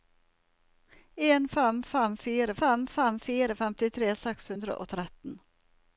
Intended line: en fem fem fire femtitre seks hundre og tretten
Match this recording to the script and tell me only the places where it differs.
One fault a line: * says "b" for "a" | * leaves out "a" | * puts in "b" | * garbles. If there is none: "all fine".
* puts in "fem fem fire"